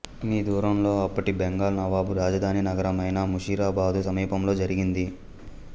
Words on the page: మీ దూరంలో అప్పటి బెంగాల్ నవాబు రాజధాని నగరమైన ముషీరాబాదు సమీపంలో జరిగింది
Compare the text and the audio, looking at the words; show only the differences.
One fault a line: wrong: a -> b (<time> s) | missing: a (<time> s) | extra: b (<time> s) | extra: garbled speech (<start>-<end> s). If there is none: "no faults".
no faults